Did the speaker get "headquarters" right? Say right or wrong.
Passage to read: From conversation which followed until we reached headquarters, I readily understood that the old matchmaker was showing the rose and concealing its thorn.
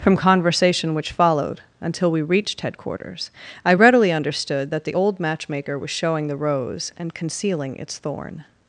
right